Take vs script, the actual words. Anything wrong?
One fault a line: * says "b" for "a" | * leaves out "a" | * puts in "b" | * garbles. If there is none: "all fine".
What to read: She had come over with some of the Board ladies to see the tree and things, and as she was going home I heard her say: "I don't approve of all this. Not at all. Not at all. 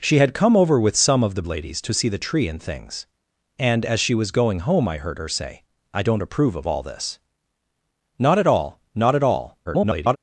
* leaves out "Board"
* garbles